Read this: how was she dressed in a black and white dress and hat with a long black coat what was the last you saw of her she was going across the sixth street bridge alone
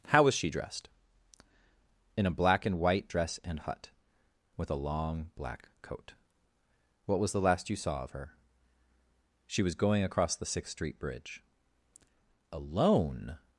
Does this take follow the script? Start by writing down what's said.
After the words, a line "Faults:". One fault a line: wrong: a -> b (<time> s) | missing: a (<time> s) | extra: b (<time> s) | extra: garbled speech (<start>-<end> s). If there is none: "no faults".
how was she dressed in a black and white dress and hut with a long black coat what was the last you saw of her she was going across the sixth street bridge alone
Faults:
wrong: hat -> hut (3.6 s)